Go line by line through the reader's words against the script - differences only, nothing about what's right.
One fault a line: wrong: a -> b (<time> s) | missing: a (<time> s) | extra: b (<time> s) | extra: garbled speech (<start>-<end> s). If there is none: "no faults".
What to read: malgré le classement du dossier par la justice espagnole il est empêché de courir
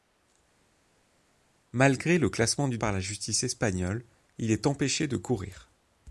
missing: dossier (2.8 s)